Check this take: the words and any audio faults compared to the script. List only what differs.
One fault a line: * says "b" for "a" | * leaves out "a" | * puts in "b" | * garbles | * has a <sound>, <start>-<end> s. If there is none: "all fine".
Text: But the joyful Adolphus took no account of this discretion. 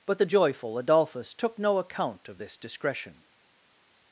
all fine